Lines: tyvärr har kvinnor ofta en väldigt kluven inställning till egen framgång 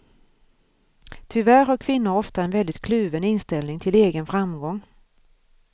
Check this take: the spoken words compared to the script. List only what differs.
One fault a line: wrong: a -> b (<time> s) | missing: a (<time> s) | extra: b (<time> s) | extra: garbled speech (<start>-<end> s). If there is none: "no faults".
no faults